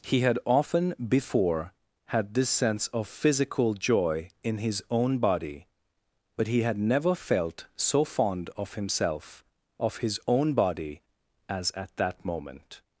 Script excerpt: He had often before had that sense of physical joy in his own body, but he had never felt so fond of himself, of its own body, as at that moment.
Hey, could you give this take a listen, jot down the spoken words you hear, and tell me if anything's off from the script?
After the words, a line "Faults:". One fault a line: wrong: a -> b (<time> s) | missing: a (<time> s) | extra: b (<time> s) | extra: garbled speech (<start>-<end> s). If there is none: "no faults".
He had often before had this sense of physical joy in his own body, but he had never felt so fond of himself, of his own body, as at that moment.
Faults:
wrong: that -> this (2.3 s)
wrong: its -> his (10.0 s)